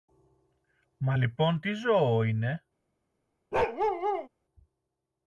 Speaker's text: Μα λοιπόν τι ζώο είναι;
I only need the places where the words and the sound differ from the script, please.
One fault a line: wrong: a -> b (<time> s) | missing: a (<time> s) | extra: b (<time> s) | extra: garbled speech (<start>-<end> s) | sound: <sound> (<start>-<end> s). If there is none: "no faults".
sound: bark (3.5-4.3 s)